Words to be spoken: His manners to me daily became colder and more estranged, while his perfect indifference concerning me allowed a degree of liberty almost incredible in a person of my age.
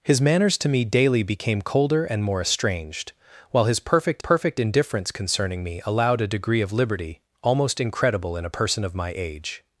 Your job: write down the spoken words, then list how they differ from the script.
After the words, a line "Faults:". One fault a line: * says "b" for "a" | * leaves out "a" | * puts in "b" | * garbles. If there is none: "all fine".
His manners to me daily became colder and more estranged, while his perfect perfect indifference concerning me allowed a degree of liberty almost incredible in a person of my age.
Faults:
* puts in "perfect"